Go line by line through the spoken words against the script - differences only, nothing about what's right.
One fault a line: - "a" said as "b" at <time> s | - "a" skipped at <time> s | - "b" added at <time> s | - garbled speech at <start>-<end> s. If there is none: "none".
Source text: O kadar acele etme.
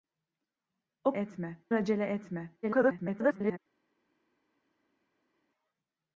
- "kadar" said as "etme" at 1.1 s
- garbled speech at 2.6-3.6 s